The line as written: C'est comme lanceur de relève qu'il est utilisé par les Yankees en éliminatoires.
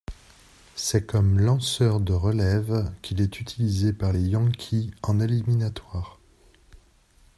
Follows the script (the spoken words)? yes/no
yes